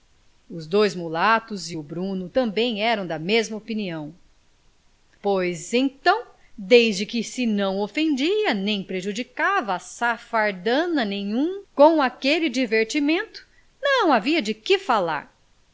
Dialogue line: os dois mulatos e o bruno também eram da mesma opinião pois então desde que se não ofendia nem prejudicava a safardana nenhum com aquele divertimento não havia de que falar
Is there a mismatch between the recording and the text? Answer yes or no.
no